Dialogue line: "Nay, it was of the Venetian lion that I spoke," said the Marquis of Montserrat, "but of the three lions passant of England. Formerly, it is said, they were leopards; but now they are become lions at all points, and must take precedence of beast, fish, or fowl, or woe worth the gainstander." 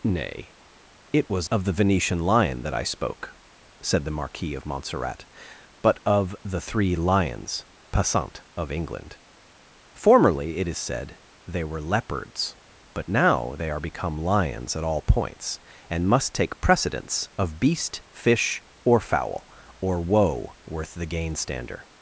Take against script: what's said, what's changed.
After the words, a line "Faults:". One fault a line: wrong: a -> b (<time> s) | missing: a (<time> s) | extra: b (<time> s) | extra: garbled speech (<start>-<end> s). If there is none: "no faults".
"Nay, it was of the Venetian lion that I spoke," said the Marquis of Montserrat, "but of the three lions passant of England. Formerly, it is said, they were leopards; but now they are become lions at all points, and must take precedence of beast, fish, or fowl, or woe worth the gainstander."
Faults:
no faults